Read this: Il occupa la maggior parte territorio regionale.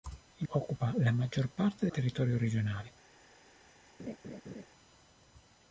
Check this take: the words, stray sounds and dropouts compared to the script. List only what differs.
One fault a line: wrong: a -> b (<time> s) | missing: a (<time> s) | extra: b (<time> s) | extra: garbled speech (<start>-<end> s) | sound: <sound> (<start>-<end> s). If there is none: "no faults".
sound: laugh (4.0-4.7 s)